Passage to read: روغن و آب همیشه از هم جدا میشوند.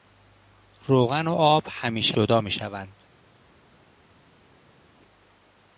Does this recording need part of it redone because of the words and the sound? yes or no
yes